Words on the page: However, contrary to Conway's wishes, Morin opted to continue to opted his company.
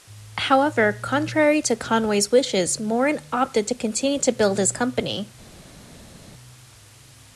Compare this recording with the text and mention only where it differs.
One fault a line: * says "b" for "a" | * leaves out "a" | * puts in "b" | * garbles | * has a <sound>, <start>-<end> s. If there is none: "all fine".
* says "build" for "opted"